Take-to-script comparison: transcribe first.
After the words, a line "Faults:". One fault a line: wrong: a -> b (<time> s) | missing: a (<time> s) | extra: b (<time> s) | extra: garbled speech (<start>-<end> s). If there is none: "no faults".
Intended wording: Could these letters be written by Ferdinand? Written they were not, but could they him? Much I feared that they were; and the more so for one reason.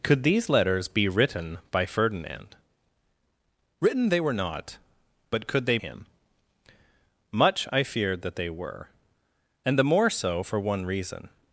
Could these letters be written by Ferdinand? Written they were not, but could they him? Much I feared that they were; and the more so for one reason.
Faults:
no faults